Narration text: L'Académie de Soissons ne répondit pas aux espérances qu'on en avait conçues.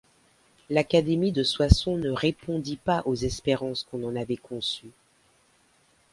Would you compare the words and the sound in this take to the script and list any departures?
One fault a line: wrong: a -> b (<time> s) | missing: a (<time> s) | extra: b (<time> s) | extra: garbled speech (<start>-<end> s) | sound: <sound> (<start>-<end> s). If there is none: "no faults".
no faults